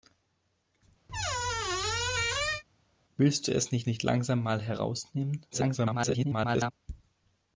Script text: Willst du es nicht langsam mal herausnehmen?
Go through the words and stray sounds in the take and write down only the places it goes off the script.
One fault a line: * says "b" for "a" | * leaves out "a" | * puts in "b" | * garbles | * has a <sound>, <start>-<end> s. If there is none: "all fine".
* has a squeak, 1.1-2.6 s
* puts in "nicht"
* garbles